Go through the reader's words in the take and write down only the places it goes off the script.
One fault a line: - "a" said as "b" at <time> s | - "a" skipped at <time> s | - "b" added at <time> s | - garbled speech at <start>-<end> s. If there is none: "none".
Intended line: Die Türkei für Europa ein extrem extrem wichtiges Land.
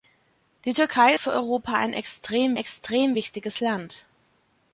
none